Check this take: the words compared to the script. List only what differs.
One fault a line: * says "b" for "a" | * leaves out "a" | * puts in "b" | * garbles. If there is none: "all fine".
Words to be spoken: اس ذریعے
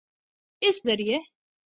all fine